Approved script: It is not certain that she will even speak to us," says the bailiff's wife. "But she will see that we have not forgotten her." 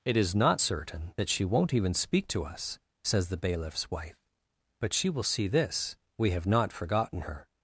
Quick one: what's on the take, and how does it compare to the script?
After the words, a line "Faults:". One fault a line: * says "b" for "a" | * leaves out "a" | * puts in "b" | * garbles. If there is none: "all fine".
It is not certain that she won't even speak to us," says the bailiff's wife. "But she will see this we have not forgotten her."
Faults:
* says "won't" for "will"
* says "this" for "that"